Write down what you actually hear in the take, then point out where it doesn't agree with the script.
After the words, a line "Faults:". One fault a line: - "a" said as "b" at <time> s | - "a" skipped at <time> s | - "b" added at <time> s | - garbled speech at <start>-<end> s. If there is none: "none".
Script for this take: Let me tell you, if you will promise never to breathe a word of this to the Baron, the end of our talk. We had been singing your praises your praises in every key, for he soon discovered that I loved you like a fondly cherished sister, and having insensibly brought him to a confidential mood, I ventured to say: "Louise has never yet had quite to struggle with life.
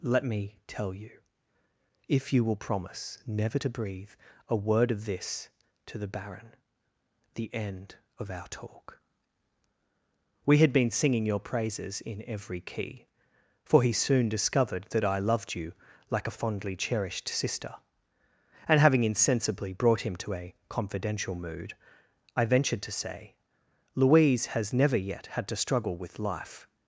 Let me tell you, if you will promise never to breathe a word of this to the Baron, the end of our talk. We had been singing your praises in every key, for he soon discovered that I loved you like a fondly cherished sister, and having insensibly brought him to a confidential mood, I ventured to say: "Louise has never yet had to struggle with life.
Faults:
- "your praises" skipped at 12.0 s
- "quite" skipped at 25.5 s